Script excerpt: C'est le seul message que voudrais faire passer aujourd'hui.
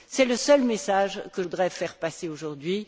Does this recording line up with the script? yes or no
yes